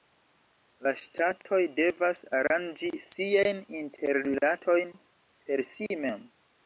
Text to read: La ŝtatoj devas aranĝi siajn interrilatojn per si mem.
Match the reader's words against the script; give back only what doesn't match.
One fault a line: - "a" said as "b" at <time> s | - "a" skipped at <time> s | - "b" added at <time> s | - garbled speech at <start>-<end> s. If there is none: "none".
none